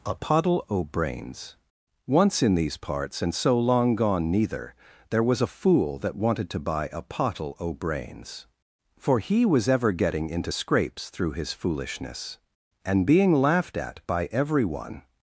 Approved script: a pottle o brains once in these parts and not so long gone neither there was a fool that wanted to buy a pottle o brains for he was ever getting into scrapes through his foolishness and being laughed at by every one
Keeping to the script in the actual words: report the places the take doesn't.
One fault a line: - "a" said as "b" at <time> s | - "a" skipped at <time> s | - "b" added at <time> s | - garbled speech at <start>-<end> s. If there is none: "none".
- "not" skipped at 3.3 s